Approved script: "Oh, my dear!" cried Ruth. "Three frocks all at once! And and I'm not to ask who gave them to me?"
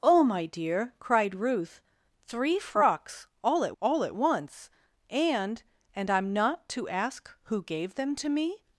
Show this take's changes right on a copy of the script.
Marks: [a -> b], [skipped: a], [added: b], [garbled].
"Oh, my dear!" cried Ruth. "Three frocks all at [added: all at] once! And and I'm not to ask who gave them to me?"